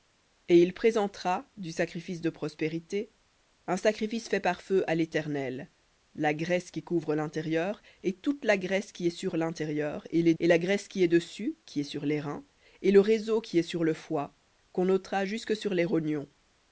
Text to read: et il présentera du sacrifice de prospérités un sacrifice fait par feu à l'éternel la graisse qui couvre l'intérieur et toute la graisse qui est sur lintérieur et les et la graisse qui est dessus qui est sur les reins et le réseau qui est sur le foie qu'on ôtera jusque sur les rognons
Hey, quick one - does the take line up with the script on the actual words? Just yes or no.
yes